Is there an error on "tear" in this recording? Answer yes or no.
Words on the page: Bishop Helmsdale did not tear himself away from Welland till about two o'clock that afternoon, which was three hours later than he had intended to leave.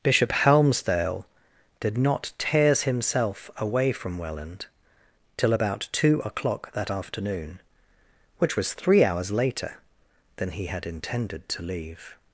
yes